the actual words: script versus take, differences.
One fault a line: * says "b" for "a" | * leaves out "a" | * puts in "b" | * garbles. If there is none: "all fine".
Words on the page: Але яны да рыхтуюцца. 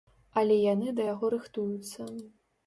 * puts in "яго"